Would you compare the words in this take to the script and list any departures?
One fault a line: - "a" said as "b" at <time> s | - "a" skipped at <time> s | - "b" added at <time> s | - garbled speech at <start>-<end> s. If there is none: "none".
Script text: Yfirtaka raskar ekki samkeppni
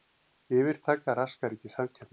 none